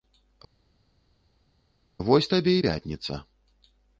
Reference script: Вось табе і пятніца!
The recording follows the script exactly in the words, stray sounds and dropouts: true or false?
true